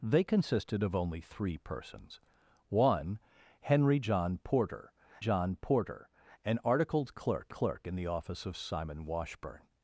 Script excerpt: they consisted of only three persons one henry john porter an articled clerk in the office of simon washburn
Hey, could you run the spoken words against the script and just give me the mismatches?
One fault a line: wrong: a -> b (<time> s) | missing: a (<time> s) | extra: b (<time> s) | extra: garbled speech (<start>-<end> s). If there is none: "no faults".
extra: john porter (5.2 s)
extra: clerk (7.5 s)